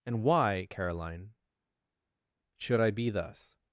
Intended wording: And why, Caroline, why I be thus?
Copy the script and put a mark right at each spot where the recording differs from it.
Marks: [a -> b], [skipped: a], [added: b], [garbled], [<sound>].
And why, Caroline, [why -> should] I be thus?